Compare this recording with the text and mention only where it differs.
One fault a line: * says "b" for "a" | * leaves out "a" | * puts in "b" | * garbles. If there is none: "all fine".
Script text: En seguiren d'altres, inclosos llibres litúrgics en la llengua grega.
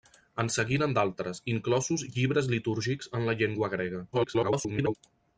* garbles